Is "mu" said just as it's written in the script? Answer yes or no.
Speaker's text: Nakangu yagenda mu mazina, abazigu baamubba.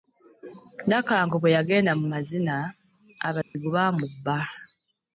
yes